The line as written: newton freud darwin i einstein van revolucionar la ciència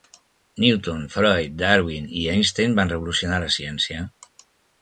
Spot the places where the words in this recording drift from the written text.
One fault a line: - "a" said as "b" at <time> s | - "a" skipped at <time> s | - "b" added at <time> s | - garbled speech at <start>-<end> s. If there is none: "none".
none